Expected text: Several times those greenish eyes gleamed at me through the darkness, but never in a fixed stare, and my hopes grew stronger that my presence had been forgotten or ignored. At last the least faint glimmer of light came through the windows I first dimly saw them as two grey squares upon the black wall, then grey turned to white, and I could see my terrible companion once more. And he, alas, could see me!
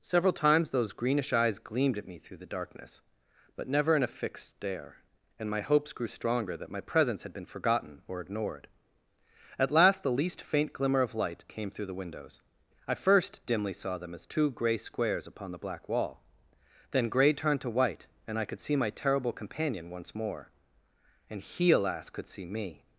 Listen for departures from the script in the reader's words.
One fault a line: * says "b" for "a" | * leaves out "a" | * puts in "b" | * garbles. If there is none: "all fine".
all fine